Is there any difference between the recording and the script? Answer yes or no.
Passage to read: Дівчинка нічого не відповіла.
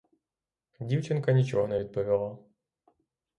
no